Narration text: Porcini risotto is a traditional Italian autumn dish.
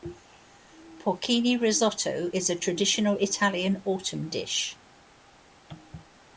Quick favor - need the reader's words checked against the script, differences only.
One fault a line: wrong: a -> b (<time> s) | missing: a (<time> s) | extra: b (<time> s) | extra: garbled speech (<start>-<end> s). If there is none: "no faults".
no faults